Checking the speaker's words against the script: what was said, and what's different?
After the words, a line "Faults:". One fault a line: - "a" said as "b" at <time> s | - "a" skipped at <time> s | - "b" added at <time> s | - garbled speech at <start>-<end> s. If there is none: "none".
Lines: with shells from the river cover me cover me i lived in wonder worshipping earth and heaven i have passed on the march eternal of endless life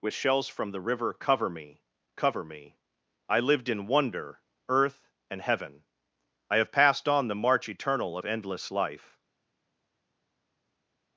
with shells from the river cover me cover me i lived in wonder earth and heaven i have passed on the march eternal of endless life
Faults:
- "worshipping" skipped at 4.4 s